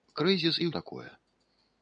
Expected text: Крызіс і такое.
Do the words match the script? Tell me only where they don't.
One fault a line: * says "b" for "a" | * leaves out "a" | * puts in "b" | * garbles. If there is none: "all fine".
all fine